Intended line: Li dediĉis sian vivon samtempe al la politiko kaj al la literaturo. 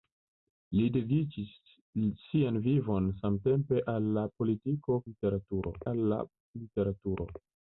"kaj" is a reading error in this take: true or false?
true